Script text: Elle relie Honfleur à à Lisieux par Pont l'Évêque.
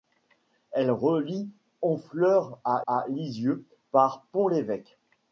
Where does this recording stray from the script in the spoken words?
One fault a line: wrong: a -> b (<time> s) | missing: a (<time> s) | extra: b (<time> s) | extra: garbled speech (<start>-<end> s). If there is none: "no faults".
no faults